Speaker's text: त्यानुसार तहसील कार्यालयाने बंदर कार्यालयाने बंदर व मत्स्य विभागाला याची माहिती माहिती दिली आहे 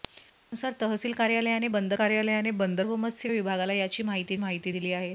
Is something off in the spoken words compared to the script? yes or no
no